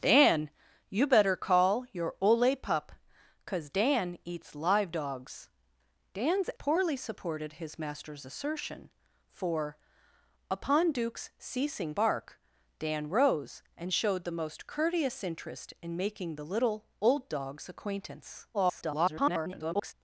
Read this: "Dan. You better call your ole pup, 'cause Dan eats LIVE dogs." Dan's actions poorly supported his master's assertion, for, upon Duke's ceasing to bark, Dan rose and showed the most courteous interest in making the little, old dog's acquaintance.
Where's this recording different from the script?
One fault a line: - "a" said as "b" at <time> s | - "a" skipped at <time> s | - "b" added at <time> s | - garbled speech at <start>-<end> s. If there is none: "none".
- "actions" skipped at 6.5 s
- "to" skipped at 11.9 s
- garbled speech at 18.5-19.9 s